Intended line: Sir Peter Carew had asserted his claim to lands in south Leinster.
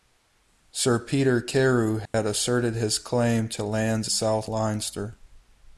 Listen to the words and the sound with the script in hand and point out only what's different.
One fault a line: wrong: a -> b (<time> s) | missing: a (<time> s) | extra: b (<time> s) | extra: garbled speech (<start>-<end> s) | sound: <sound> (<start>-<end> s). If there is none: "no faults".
sound: dropout (2.1-2.1 s)
missing: in (4.1 s)